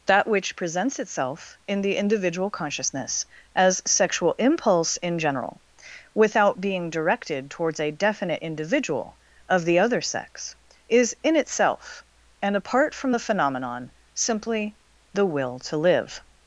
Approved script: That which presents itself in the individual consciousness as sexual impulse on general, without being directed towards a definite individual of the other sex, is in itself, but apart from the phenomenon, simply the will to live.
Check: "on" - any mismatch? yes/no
yes